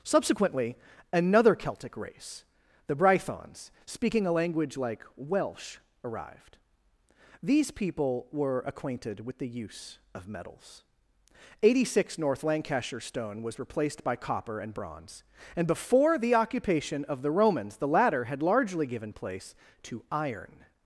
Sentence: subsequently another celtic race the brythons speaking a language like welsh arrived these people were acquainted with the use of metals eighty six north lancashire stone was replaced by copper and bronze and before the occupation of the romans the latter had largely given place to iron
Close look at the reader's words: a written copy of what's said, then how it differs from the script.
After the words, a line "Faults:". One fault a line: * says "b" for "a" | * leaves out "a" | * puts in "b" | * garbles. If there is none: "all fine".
subsequently another celtic race the brythons speaking a language like welsh arrived these people were acquainted with the use of metals eighty six north lancashire stone was replaced by copper and bronze and before the occupation of the romans the latter had largely given place to iron
Faults:
all fine